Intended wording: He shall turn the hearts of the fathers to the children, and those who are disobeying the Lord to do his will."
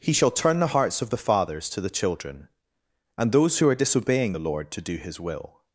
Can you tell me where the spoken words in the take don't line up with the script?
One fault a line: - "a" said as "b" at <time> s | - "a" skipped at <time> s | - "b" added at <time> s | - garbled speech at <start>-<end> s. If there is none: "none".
none